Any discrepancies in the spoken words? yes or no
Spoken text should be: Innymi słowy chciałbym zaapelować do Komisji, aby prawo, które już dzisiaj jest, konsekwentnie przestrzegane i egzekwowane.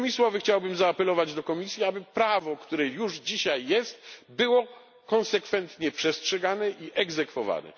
yes